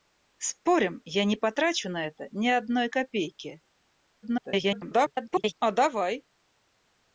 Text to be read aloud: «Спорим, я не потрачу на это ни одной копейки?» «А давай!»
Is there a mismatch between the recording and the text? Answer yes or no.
yes